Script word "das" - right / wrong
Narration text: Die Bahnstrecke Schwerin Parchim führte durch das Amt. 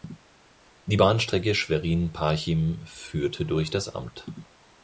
right